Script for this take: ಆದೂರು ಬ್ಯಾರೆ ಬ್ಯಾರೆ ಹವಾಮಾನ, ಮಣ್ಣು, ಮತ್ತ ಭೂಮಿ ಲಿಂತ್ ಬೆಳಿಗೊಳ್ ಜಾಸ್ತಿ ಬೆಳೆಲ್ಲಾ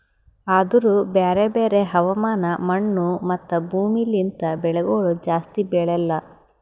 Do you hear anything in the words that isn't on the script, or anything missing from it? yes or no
no